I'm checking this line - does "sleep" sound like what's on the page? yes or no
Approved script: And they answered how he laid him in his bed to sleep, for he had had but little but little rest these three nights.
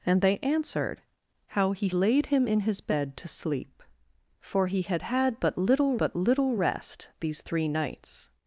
yes